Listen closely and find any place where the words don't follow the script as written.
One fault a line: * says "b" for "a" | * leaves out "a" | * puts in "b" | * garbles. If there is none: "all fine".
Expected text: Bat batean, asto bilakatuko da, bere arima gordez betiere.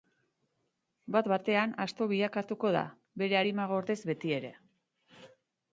all fine